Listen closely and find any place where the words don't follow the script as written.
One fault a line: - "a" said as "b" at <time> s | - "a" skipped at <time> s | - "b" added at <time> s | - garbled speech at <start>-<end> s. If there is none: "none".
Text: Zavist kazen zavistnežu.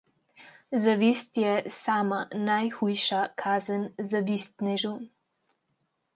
- "je sama najhujša" added at 1.4 s